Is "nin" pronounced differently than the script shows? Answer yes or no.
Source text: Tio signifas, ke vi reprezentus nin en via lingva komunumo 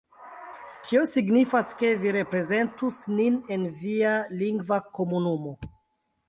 no